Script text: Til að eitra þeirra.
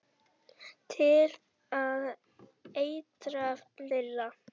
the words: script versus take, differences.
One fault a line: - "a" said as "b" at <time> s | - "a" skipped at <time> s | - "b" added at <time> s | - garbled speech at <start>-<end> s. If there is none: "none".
none